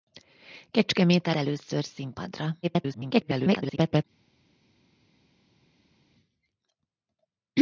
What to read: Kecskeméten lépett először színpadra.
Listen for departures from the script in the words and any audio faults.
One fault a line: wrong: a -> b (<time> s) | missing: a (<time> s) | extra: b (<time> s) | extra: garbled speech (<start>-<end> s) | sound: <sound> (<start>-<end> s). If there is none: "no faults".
missing: lépett (1.4 s)
extra: garbled speech (2.6-4.0 s)